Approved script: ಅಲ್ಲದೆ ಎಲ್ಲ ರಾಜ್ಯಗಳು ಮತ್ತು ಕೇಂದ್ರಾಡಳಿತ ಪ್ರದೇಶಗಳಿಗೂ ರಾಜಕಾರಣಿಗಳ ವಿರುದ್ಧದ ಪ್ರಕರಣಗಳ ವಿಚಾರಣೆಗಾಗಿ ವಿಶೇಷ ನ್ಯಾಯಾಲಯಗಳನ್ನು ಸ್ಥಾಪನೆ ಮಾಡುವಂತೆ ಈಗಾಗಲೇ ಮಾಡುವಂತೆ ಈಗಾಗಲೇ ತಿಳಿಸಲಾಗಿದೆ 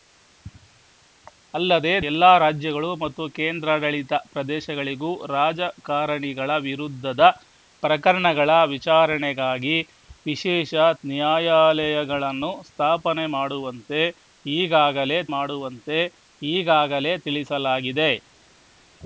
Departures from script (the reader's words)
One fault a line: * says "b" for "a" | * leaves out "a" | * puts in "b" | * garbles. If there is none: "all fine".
all fine